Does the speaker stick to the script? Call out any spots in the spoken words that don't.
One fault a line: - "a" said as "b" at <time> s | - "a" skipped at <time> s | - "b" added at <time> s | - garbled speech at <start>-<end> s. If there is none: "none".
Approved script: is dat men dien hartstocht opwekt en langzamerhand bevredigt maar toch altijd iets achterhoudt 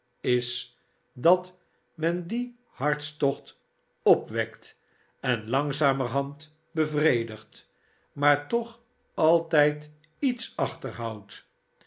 none